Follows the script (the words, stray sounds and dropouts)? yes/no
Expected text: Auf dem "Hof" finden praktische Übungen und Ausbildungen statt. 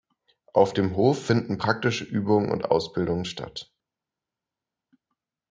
yes